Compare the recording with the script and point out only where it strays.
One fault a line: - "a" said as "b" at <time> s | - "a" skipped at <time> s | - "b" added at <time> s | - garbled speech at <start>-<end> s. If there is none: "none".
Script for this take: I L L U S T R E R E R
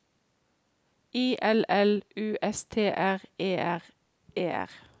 none